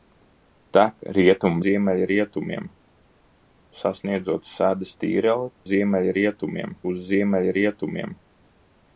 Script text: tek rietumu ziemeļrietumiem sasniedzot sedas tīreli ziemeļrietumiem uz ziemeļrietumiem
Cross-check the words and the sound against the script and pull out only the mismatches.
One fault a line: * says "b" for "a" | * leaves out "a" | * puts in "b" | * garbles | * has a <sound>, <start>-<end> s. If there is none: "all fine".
all fine